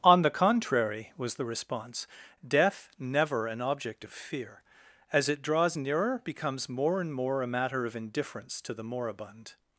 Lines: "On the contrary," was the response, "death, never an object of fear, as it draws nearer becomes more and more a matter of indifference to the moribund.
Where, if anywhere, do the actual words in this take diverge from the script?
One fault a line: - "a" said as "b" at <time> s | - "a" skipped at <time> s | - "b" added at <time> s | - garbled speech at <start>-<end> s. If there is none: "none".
none